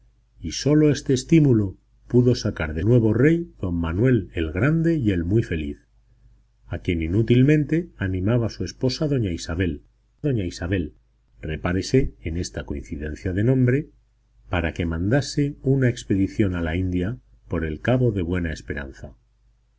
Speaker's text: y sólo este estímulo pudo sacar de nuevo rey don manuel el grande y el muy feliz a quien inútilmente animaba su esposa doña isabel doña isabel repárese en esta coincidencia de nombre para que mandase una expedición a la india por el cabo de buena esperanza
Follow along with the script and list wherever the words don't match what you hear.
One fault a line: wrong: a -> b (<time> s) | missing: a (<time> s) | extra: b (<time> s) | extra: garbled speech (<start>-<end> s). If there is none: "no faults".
no faults